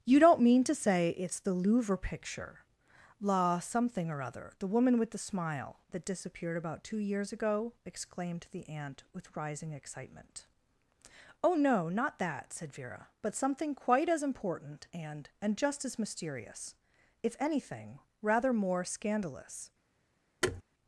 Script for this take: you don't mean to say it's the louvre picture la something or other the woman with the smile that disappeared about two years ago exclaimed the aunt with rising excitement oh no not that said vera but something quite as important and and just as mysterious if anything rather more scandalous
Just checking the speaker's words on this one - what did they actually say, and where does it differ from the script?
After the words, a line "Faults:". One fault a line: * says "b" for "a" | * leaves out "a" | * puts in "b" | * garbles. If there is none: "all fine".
you don't mean to say it's the louvre picture la something or other the woman with the smile that disappeared about two years ago exclaimed the aunt with rising excitement oh no not that said vera but something quite as important and and just as mysterious if anything rather more scandalous
Faults:
all fine